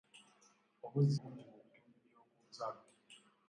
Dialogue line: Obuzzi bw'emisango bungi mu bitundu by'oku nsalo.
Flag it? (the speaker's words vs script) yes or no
yes